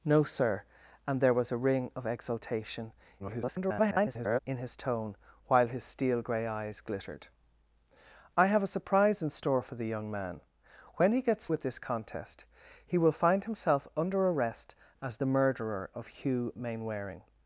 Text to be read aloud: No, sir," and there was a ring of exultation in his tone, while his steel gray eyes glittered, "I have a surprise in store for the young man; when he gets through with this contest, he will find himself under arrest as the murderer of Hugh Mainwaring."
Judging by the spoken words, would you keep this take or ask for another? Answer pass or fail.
fail